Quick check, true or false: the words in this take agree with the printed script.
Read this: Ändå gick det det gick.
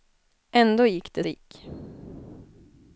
true